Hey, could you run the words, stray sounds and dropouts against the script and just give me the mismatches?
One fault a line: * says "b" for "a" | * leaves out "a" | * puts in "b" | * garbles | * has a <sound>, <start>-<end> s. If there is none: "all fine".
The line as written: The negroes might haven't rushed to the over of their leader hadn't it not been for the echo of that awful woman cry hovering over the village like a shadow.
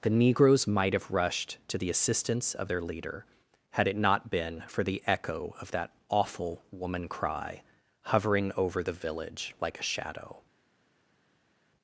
* says "have" for "haven't"
* says "assistance" for "over"
* says "had" for "hadn't"